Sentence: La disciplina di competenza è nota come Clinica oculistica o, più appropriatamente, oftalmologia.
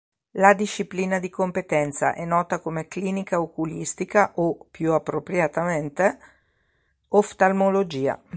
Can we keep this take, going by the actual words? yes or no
yes